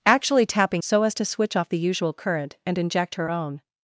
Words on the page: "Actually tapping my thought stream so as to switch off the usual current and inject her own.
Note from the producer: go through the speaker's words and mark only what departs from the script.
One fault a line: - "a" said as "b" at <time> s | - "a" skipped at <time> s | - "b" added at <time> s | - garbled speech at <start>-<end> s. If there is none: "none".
- "my thought stream" skipped at 0.8 s